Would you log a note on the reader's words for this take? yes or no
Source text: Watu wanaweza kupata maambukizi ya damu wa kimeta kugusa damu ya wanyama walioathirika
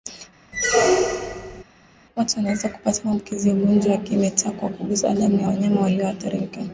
yes